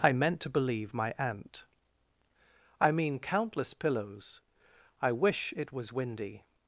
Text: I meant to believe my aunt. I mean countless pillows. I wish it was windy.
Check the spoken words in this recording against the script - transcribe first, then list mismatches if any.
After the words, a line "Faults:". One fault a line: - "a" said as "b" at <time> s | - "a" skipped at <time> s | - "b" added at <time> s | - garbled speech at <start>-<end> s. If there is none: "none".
I meant to believe my aunt. I mean countless pillows. I wish it was windy.
Faults:
none